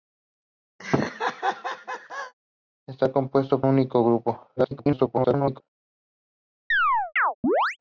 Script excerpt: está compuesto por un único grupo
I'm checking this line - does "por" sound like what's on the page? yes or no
no